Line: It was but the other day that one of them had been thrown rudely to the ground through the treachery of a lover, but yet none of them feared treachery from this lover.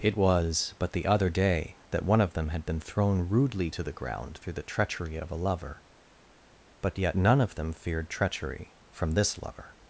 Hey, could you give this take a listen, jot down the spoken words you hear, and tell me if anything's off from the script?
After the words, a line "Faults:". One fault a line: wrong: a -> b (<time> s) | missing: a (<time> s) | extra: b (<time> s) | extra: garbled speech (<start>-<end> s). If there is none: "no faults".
It was but the other day that one of them had been thrown rudely to the ground through the treachery of a lover, but yet none of them feared treachery from this lover.
Faults:
no faults